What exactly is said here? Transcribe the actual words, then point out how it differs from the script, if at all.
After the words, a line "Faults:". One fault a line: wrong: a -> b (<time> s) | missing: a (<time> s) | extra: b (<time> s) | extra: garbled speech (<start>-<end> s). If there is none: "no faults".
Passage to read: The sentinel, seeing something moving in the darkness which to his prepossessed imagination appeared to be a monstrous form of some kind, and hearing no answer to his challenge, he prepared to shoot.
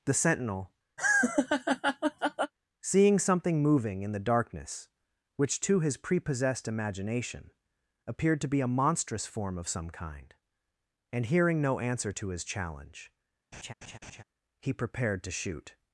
The sentinel, seeing something moving in the darkness which to his prepossessed imagination appeared to be a monstrous form of some kind, and hearing no answer to his challenge, he prepared to shoot.
Faults:
no faults